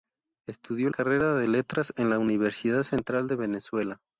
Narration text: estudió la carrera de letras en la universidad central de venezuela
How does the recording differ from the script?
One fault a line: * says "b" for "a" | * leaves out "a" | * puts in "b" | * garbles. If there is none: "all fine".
* leaves out "la"